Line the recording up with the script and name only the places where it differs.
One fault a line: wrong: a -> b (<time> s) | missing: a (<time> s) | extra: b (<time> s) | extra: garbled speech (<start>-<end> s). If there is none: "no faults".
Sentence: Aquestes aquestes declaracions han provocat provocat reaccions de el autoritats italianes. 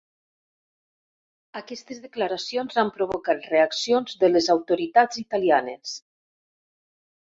missing: aquestes (2.0 s)
missing: provocat (3.5 s)
wrong: el -> les (4.3 s)